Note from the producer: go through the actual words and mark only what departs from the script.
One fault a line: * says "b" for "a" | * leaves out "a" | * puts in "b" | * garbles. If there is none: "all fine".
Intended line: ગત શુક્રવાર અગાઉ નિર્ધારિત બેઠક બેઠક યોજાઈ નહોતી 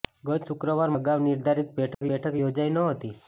all fine